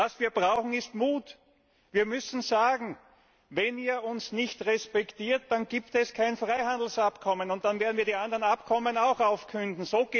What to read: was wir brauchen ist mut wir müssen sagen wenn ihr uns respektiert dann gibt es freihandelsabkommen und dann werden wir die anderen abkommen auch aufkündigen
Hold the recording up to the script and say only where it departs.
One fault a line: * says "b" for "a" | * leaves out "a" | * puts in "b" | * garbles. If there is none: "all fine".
* puts in "nicht"
* puts in "kein"